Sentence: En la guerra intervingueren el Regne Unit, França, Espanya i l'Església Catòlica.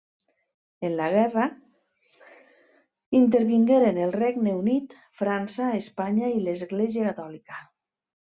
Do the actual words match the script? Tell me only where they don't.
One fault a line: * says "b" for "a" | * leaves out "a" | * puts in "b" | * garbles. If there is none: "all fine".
all fine